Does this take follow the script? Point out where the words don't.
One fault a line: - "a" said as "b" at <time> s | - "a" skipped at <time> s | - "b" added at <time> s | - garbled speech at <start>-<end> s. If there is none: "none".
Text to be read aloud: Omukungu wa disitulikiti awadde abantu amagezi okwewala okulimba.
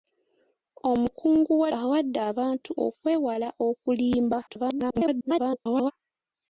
- "disitulikiti" skipped at 1.7 s
- "amagezi" skipped at 2.7 s
- garbled speech at 4.5-5.9 s